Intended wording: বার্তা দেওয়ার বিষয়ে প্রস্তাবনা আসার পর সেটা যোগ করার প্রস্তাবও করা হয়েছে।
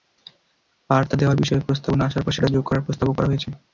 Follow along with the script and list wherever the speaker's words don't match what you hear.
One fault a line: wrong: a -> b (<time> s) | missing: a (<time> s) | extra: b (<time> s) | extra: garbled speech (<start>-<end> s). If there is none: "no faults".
no faults